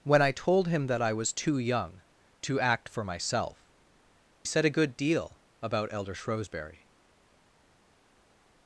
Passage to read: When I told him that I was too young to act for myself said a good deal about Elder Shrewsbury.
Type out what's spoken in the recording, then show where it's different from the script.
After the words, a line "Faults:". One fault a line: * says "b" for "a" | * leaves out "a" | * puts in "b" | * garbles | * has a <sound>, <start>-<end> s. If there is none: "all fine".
When I told him that I was too young to act for myself said a good deal about Elder Shrewsbury.
Faults:
all fine